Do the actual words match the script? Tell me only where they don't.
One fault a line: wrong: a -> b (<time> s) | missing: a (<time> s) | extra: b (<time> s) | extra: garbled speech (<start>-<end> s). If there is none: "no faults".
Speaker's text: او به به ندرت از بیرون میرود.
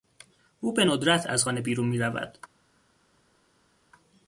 missing: به (0.8 s)
extra: خانه (1.4 s)